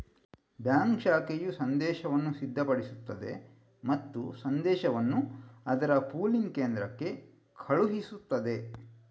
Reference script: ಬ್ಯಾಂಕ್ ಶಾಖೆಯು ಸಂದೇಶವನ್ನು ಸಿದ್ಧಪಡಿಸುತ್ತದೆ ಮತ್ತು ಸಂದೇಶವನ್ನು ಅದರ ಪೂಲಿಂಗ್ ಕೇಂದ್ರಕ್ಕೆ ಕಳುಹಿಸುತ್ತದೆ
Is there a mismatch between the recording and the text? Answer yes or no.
no